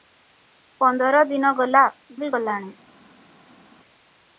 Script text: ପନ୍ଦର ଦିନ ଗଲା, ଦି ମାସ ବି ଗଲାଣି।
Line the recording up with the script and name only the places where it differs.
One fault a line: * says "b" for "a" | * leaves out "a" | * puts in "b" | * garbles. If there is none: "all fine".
* leaves out "ଦି ମାସ"